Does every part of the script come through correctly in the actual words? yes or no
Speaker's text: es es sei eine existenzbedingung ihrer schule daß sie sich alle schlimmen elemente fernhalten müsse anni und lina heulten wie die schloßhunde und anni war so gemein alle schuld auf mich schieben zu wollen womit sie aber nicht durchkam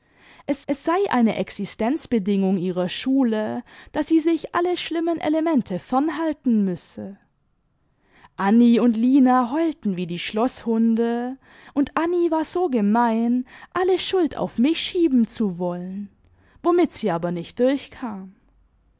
yes